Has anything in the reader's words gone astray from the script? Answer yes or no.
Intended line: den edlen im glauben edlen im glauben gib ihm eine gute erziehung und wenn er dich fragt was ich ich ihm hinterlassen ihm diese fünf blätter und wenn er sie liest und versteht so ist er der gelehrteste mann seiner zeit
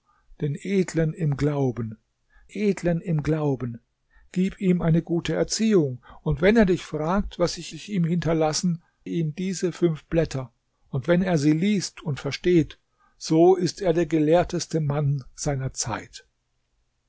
no